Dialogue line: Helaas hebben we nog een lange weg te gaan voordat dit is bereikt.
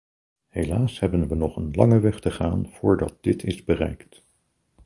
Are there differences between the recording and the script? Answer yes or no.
no